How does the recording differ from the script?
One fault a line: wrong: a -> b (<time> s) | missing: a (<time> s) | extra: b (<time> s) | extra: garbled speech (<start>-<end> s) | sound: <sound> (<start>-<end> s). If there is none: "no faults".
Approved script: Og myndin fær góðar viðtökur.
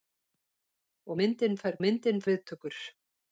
wrong: góðar -> myndin (1.8 s)